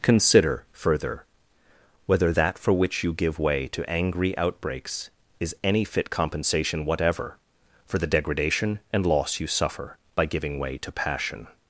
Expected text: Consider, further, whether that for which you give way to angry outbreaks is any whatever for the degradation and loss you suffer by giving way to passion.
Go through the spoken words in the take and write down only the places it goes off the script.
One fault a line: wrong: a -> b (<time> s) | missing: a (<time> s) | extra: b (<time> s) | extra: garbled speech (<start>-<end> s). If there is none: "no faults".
extra: fit compensation (5.9 s)